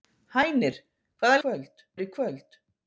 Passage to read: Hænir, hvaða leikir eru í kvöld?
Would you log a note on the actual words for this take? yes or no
yes